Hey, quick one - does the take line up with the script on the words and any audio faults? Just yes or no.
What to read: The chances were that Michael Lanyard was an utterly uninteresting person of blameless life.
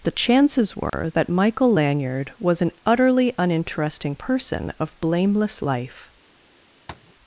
no